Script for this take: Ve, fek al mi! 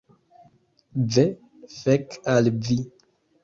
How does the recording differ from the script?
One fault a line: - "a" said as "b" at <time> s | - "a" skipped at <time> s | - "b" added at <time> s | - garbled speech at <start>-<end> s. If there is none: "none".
- "mi" said as "vi" at 2.6 s